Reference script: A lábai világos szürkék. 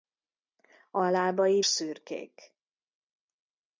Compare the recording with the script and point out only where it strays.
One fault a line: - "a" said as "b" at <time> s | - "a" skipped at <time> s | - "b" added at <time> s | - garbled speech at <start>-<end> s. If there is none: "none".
- "világos" skipped at 1.6 s